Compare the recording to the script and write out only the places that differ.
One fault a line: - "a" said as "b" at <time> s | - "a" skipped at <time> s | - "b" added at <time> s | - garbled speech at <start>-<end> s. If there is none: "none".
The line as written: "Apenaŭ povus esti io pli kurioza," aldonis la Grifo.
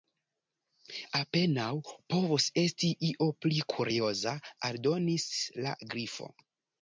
none